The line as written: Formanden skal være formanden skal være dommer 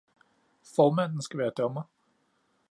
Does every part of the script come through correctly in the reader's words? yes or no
no